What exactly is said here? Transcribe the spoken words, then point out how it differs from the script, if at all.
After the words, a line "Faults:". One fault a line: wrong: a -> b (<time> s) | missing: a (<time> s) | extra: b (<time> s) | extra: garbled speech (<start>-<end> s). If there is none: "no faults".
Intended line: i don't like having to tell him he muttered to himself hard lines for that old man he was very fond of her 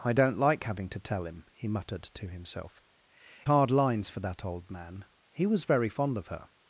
i don't like having to tell him he muttered to himself hard lines for that old man he was very fond of her
Faults:
no faults